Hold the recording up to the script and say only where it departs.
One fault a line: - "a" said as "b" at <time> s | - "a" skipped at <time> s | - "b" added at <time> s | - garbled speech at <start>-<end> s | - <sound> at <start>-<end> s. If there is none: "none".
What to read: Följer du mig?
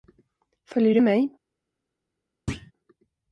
- thud at 2.5-2.7 s